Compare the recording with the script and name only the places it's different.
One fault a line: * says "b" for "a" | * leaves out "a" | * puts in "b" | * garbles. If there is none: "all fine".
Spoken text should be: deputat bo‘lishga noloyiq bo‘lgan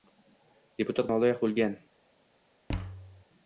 * leaves out "bo‘lishga"